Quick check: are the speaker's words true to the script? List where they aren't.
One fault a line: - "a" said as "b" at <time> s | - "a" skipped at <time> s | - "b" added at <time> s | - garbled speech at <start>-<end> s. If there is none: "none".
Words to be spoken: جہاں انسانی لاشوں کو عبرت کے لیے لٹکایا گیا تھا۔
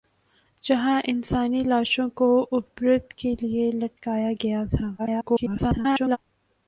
- garbled speech at 5.0-6.2 s